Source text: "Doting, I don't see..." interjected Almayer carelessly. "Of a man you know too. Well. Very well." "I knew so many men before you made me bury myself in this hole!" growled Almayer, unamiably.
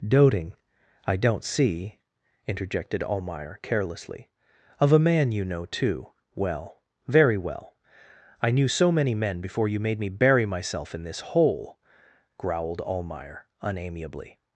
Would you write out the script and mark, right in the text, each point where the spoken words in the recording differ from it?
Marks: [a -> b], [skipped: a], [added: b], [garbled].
"Doting, I don't see..." interjected Almayer carelessly. "Of a man you know too. Well. Very well." "I knew so many men before you made me bury myself in this hole!" growled Almayer, unamiably.